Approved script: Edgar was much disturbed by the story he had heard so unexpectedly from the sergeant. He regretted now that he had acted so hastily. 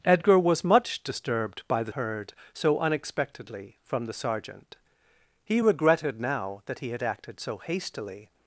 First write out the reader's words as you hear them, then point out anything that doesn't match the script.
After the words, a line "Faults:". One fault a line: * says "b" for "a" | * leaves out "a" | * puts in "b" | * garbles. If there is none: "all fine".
Edgar was much disturbed by the heard so unexpectedly from the sergeant. He regretted now that he had acted so hastily.
Faults:
* leaves out "story he had"